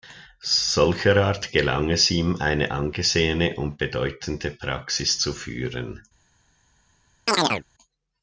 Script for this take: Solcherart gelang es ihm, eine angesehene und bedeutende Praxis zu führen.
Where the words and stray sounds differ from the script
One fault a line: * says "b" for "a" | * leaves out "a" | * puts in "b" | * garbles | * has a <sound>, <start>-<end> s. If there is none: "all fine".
* has a chirp, 7.3-7.6 s